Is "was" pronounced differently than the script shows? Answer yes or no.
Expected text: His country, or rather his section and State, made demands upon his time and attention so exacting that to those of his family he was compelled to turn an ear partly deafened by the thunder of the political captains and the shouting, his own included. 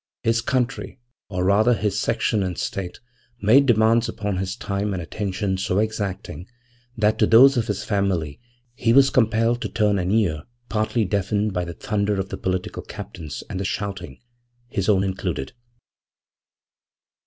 no